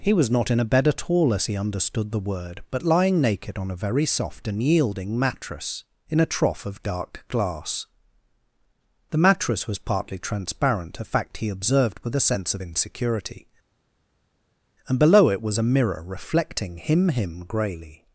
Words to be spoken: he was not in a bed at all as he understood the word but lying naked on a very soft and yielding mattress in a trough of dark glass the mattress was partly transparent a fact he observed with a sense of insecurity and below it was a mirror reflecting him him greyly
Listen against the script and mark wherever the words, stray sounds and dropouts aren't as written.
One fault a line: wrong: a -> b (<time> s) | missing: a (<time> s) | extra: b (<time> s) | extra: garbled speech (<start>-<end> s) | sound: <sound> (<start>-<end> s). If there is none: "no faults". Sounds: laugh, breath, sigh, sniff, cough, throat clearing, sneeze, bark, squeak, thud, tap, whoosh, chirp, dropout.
no faults